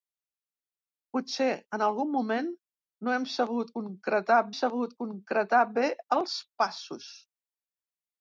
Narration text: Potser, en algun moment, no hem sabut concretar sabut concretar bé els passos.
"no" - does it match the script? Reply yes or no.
yes